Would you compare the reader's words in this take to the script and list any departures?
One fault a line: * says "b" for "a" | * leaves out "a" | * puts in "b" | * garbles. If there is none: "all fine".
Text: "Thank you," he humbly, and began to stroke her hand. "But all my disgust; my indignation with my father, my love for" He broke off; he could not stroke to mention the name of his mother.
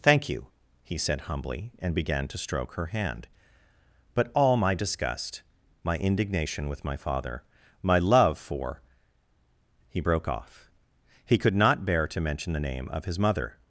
* puts in "said"
* says "bear" for "stroke"